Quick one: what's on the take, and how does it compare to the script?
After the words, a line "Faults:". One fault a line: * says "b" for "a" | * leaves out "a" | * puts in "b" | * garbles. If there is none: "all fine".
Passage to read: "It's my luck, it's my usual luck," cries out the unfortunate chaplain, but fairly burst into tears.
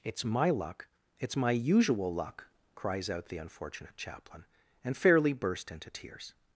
"It's my luck, it's my usual luck," cries out the unfortunate chaplain, and fairly burst into tears.
Faults:
* says "and" for "but"